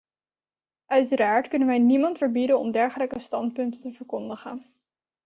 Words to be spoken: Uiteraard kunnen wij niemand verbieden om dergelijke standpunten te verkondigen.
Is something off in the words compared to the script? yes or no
no